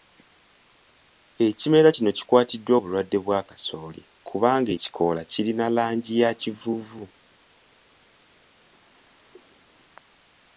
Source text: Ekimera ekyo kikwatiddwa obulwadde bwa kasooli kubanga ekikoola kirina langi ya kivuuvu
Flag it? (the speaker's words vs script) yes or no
yes